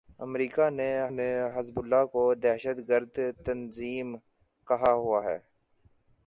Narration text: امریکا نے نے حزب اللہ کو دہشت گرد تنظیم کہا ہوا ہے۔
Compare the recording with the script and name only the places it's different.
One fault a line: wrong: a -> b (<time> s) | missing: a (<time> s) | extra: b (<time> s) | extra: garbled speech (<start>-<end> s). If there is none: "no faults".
no faults